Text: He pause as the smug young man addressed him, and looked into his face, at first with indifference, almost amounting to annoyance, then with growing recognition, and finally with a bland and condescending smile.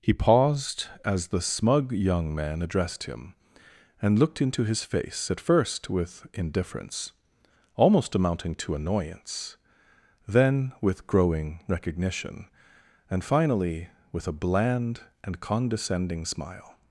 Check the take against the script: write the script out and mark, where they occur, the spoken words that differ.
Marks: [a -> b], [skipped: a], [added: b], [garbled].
He [pause -> paused] as the smug young man addressed him, and looked into his face, at first with indifference, almost amounting to annoyance, then with growing recognition, and finally with a bland and condescending smile.